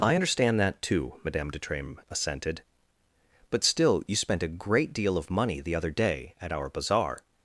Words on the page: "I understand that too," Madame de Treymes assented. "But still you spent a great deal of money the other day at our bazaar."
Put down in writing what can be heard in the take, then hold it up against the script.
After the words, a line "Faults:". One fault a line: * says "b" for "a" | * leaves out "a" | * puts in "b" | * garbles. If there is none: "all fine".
"I understand that too," Madame de Treymes assented. "But still you spent a great deal of money the other day at our bazaar."
Faults:
all fine